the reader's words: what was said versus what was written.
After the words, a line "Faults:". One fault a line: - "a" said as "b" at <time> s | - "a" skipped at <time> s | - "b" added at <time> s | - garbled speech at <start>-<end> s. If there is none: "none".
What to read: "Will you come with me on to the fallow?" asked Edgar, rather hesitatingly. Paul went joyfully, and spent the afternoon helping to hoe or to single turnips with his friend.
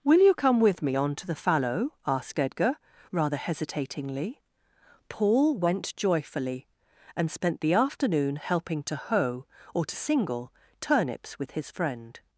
"Will you come with me on to the fallow?" asked Edgar, rather hesitatingly. Paul went joyfully, and spent the afternoon helping to hoe or to single turnips with his friend.
Faults:
none